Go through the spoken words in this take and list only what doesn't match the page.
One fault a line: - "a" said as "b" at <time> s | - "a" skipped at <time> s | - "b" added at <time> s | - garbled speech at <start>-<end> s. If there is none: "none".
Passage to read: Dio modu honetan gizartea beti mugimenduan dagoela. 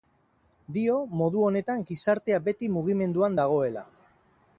none